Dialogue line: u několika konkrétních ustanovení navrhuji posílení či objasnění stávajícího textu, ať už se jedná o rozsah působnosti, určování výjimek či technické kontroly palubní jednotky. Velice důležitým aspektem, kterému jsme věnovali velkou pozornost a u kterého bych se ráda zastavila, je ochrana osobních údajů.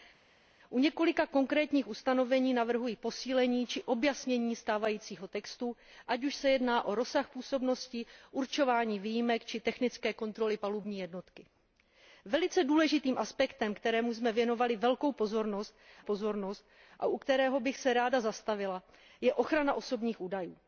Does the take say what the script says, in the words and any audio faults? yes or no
no